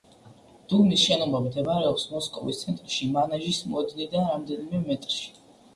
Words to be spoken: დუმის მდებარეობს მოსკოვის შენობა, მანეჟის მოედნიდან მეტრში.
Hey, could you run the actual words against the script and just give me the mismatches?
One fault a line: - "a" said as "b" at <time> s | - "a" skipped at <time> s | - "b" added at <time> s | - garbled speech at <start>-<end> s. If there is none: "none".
- "შენობა" added at 1.1 s
- "შენობა" said as "ცენტრში" at 2.6 s
- "რამდენიმე" added at 4.3 s